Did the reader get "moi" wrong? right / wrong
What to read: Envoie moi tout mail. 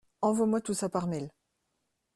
right